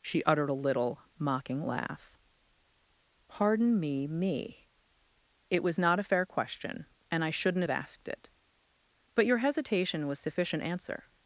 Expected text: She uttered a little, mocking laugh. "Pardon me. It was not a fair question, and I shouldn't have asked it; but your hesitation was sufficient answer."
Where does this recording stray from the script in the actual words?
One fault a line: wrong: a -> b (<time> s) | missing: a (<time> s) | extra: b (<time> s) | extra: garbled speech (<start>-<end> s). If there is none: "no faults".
extra: me (4.1 s)